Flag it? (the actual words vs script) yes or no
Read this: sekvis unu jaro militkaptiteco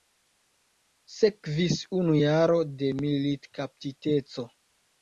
yes